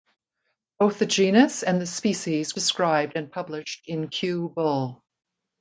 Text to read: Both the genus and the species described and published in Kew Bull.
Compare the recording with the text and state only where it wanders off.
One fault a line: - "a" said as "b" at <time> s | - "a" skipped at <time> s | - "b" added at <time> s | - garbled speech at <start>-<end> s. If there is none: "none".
none